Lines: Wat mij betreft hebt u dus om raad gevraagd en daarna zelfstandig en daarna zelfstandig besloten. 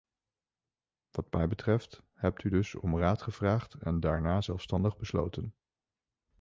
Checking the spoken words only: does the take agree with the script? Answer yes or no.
no